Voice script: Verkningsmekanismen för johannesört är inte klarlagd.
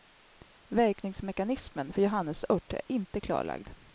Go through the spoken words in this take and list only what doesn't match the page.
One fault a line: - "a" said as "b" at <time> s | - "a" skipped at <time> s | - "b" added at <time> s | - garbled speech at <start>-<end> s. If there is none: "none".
none